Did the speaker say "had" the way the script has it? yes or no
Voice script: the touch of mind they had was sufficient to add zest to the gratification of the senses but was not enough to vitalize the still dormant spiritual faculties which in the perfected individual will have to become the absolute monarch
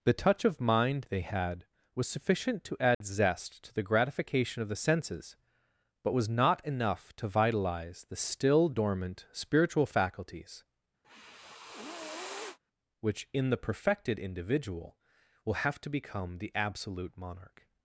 yes